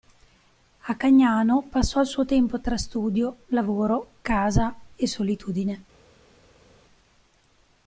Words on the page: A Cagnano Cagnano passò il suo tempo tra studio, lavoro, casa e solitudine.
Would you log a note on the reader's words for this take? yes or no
yes